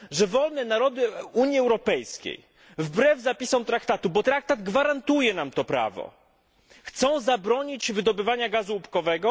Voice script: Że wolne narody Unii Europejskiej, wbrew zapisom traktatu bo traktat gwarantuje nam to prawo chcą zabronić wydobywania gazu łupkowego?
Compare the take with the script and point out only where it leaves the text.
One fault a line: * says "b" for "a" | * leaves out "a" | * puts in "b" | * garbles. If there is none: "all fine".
all fine